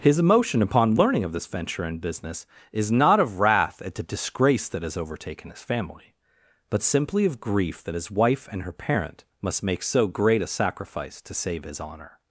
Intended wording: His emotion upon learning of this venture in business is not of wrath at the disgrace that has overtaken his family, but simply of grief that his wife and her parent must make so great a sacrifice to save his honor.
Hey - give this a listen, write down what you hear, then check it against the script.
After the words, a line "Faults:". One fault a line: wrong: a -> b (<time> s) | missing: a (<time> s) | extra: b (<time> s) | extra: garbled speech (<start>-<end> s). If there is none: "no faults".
His emotion upon learning of this venture in business is not of wrath at the disgrace that has overtaken his family, but simply of grief that his wife and her parent must make so great a sacrifice to save his honor.
Faults:
no faults